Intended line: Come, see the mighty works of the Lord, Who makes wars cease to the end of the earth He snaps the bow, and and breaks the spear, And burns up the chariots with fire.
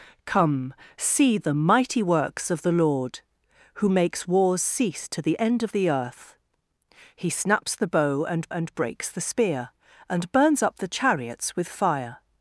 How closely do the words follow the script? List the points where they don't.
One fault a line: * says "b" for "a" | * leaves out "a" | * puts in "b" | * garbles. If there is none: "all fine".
all fine